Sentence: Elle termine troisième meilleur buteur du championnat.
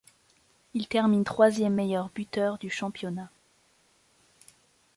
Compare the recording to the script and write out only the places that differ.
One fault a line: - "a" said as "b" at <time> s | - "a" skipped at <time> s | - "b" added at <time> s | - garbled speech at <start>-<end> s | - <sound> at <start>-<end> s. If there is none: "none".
- "Elle" said as "Il" at 0.7 s